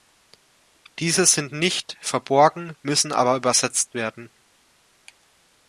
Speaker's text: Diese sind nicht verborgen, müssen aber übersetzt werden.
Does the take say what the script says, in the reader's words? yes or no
yes